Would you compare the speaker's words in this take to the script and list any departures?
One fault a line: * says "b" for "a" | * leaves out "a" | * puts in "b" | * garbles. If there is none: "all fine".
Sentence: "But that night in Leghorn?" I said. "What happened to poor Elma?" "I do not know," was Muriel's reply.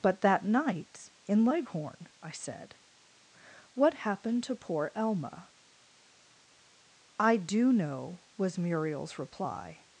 * leaves out "not"